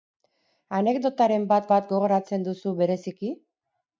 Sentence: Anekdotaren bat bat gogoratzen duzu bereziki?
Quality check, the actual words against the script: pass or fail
pass